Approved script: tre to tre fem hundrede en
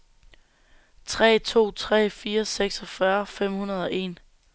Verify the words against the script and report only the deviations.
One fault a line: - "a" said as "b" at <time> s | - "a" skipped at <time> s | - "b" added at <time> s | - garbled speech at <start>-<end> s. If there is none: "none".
- "fire seksogfyrre" added at 2.1 s
- "og" added at 3.8 s